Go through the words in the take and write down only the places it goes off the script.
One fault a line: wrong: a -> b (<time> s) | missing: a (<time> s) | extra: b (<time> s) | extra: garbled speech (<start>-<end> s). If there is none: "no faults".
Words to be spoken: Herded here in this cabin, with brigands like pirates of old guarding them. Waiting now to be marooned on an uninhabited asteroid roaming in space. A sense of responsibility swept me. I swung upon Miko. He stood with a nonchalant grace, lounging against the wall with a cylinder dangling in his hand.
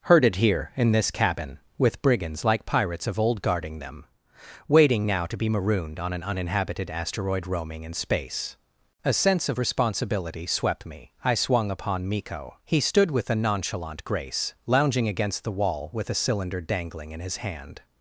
no faults